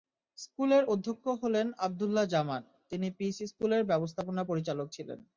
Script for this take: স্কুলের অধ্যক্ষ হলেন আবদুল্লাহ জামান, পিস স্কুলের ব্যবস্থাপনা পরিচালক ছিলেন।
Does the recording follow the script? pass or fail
fail